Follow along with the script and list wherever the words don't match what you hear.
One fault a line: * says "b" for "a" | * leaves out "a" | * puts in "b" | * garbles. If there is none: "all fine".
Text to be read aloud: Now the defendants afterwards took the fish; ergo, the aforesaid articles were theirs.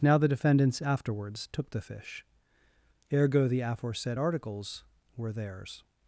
all fine